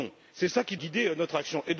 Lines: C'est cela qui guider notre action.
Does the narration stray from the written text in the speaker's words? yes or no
no